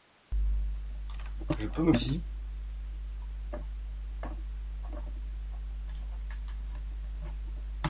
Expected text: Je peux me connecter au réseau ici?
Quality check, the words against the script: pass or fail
fail